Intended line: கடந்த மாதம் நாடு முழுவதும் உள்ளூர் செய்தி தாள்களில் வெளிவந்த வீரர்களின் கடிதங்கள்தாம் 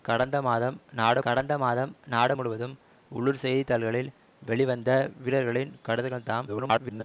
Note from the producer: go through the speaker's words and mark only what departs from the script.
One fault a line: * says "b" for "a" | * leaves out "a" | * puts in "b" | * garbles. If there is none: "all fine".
* puts in "கடந்த மாதம் நாடு"
* garbles